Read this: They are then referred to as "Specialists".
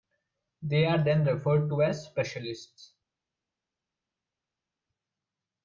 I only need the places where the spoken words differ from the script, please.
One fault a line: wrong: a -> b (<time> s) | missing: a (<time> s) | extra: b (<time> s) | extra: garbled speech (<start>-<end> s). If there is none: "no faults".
no faults